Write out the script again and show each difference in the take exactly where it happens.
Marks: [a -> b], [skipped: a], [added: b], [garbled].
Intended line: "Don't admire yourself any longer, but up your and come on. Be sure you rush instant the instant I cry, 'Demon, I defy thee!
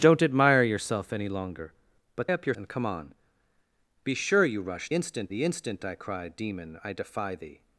"Don't admire yourself any longer, but up your and come on. Be sure you rush instant the instant I cry, 'Demon, I defy thee!